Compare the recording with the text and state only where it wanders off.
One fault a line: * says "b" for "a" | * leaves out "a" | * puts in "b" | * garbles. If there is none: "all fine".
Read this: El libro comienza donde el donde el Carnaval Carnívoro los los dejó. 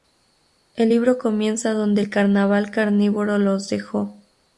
* leaves out "donde el"
* leaves out "los"